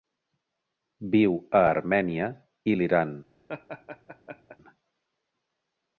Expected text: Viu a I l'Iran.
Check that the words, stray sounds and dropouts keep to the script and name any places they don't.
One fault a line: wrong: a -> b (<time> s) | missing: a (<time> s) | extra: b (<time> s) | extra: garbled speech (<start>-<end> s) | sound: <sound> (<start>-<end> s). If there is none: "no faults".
extra: Armènia (1.7 s)
sound: laugh (3.5-4.6 s)